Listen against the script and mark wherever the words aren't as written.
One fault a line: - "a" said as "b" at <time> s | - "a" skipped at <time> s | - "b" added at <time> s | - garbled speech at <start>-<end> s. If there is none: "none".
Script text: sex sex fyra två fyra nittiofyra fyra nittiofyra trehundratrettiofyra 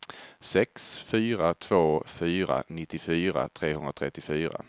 - "sex" skipped at 1.0 s
- "fyra nittiofyra" skipped at 3.5 s